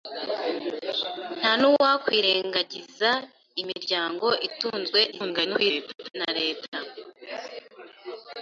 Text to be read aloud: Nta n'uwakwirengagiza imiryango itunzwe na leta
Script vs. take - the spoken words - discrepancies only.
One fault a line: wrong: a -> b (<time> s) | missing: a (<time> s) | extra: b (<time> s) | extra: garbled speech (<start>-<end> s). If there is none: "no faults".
extra: garbled speech (5.1-6.1 s)